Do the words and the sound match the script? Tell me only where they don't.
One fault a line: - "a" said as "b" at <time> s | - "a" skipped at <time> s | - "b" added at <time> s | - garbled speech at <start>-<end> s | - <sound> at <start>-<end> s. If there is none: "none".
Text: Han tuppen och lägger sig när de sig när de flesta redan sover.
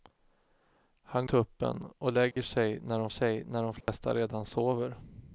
- dropout at 2.3-2.4 s
- dropout at 3.8-3.9 s